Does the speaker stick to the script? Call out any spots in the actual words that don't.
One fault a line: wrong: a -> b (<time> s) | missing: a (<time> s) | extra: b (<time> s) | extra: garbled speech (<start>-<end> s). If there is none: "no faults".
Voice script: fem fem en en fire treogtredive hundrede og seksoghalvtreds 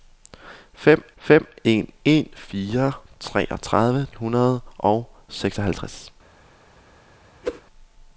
no faults